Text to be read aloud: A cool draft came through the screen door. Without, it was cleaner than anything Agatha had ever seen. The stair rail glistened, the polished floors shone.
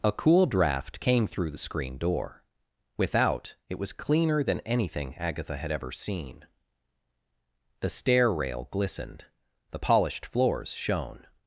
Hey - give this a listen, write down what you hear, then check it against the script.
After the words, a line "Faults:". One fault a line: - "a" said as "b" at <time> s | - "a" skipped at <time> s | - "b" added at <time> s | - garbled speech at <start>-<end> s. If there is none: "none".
A cool draft came through the screen door. Without, it was cleaner than anything Agatha had ever seen. The stair rail glistened, the polished floors shone.
Faults:
none